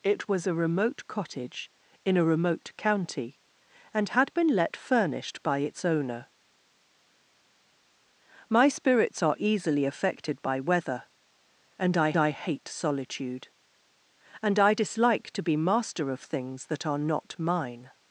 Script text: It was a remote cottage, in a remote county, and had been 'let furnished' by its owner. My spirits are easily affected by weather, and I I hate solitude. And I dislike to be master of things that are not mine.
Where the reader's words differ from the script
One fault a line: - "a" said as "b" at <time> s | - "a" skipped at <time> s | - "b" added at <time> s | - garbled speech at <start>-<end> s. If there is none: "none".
none